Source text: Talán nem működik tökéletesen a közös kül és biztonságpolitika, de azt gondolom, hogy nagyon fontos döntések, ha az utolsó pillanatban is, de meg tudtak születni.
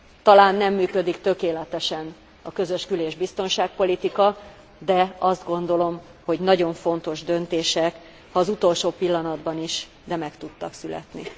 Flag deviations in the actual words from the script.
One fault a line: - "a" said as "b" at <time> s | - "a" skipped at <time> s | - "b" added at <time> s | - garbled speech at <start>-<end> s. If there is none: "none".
none